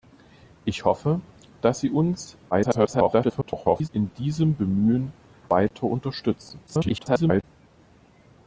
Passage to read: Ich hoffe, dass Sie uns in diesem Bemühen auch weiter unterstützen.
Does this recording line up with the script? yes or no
no